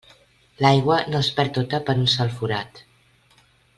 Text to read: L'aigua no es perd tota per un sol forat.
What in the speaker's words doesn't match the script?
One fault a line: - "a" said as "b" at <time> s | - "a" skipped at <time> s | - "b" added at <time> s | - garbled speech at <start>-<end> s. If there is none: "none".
none